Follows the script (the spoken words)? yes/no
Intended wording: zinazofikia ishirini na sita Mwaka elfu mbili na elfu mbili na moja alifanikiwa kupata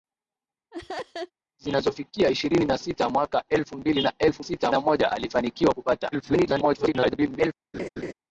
no